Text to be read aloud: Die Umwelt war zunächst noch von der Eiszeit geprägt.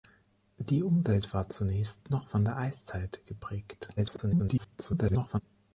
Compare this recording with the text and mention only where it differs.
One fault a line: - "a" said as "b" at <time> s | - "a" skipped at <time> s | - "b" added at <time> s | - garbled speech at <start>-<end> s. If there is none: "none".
- garbled speech at 4.0-5.4 s